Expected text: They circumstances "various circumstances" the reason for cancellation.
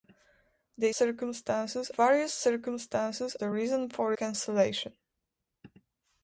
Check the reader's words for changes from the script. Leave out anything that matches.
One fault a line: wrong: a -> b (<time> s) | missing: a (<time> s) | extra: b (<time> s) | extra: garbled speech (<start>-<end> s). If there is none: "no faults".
no faults